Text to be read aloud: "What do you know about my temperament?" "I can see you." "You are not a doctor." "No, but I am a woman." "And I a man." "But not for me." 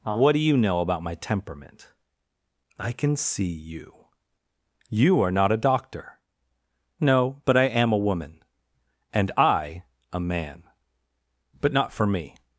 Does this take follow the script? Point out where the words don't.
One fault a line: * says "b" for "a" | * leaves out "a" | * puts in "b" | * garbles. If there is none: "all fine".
all fine